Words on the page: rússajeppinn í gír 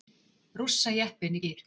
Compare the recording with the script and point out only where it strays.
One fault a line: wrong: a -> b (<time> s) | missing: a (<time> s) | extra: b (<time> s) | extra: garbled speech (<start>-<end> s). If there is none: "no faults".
no faults